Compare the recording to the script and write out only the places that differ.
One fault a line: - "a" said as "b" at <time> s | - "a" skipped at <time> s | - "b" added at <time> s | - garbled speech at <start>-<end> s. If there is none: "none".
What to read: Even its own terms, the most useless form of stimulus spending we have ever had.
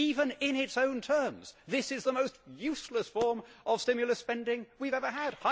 - "in" added at 0.4 s
- "this is" added at 1.7 s